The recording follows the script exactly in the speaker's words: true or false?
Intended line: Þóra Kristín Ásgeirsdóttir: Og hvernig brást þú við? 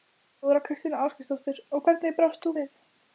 true